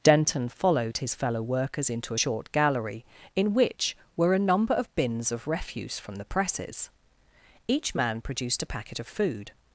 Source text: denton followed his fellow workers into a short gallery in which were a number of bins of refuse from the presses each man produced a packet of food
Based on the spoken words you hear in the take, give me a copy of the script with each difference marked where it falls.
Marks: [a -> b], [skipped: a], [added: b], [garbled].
denton followed his fellow workers into [skipped: a] short gallery in which were a number of bins of refuse from the presses each man produced a packet of food